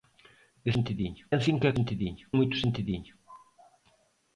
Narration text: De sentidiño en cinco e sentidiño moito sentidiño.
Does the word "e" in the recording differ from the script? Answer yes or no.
no